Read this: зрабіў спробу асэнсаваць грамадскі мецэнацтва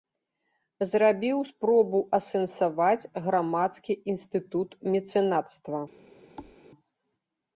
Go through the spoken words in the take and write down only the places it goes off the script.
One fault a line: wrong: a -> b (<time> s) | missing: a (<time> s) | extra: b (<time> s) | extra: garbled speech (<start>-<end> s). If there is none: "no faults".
extra: інстытут (4.2 s)